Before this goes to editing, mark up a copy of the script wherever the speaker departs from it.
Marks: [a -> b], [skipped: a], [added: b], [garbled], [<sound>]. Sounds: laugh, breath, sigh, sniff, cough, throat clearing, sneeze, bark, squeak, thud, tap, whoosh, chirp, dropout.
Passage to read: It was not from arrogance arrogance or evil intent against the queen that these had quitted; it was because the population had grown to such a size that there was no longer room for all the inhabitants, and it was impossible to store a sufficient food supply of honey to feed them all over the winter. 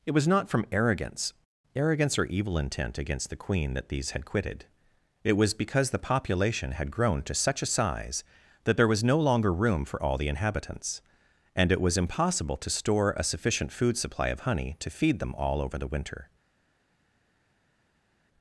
It was not from arrogance arrogance or evil intent against the queen that these had quitted; it was because the population had grown to such a size that there was no longer room for all the inhabitants, and it was impossible to store a sufficient food supply of honey to feed them all over the winter.